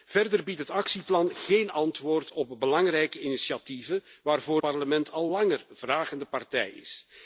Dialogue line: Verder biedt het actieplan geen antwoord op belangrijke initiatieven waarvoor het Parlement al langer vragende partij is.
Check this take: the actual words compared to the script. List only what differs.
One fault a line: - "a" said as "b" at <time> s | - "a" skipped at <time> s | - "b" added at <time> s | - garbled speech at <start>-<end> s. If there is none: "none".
- "het" skipped at 4.6 s